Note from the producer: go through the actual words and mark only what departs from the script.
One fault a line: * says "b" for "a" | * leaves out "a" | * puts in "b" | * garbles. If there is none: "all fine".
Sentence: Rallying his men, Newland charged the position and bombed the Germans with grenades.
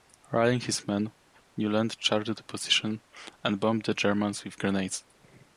all fine